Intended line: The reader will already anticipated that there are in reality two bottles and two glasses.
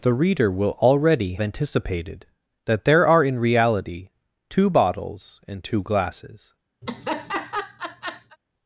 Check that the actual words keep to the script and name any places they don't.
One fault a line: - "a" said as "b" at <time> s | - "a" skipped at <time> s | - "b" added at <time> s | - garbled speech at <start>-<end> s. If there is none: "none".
none